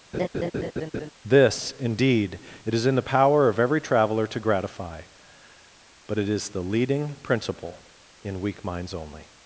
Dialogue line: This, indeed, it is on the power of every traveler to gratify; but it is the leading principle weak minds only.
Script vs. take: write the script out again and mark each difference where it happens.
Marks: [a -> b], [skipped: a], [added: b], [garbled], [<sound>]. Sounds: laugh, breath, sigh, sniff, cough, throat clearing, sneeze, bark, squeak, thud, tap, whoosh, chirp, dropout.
[laugh] This, indeed, it is [on -> in] the power of every traveler to gratify; but it is the leading principle [added: in] weak minds only.